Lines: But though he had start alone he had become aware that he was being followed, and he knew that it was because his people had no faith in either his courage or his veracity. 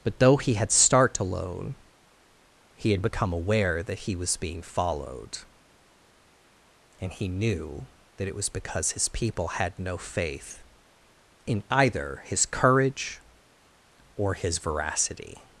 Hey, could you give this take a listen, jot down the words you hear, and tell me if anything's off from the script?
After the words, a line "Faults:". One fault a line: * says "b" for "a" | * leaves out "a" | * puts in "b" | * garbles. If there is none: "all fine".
But though he had start alone he had become aware that he was being followed, and he knew that it was because his people had no faith in either his courage or his veracity.
Faults:
all fine